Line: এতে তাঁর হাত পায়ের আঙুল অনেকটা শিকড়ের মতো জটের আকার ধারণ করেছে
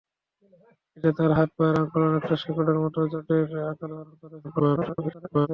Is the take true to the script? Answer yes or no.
no